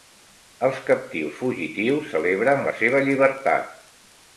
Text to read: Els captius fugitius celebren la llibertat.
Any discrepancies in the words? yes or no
yes